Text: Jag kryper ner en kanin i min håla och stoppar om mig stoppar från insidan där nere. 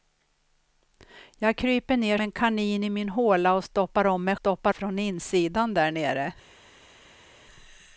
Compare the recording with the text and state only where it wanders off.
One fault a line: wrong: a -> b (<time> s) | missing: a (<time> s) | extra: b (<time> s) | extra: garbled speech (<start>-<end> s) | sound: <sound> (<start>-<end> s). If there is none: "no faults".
no faults